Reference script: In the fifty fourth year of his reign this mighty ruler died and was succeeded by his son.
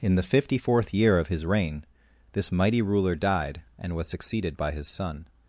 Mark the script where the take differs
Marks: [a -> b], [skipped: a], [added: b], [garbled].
In the fifty fourth year of his reign this mighty ruler died and was succeeded by his son.